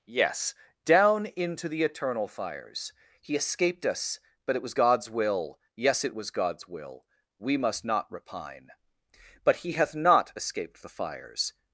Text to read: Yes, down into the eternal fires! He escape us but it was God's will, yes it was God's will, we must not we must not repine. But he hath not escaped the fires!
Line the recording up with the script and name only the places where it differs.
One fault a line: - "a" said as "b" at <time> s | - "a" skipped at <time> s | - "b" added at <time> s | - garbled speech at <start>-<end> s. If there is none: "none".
- "escape" said as "escaped" at 3.4 s
- "we must not" skipped at 8.1 s